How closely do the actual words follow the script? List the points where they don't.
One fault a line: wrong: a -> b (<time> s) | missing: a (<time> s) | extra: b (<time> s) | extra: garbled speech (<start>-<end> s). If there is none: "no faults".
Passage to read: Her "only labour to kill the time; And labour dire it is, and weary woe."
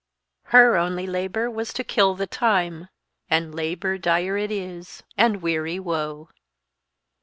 extra: was (1.5 s)